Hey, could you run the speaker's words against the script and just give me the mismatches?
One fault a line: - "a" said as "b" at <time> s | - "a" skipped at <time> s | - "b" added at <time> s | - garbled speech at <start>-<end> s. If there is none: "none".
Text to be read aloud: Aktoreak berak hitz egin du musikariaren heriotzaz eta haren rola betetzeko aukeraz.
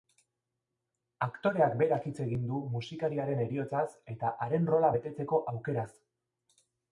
none